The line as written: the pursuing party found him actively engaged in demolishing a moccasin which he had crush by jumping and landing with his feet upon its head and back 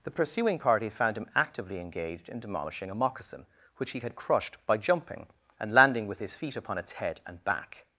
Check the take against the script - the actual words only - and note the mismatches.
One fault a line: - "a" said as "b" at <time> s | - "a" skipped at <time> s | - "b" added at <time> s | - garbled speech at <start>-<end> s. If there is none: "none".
- "crush" said as "crushed" at 4.2 s